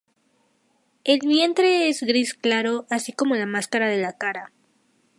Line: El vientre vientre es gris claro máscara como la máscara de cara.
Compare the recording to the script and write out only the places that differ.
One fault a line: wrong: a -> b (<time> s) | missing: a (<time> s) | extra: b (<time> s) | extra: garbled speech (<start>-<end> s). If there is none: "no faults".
missing: vientre (1.9 s)
wrong: máscara -> así (2.9 s)
extra: la (4.0 s)